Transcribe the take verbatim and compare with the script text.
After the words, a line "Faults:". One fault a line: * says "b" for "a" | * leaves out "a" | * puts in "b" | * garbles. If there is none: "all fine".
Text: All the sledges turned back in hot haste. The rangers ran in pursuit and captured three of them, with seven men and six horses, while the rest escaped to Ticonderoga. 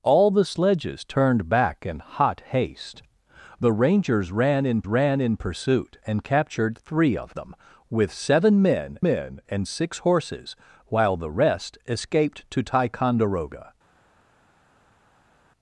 All the sledges turned back in hot haste. The rangers ran in ran in pursuit and captured three of them, with seven men men and six horses, while the rest escaped to Ticonderoga.
Faults:
* puts in "ran in"
* puts in "men"